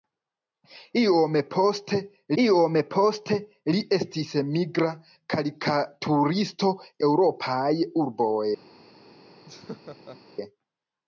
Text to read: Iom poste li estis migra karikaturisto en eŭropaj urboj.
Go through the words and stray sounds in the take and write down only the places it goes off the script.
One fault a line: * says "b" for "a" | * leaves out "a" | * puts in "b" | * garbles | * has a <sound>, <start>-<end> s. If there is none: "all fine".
* puts in "iom poste"
* leaves out "en"
* has a laugh, 9.5-10.2 s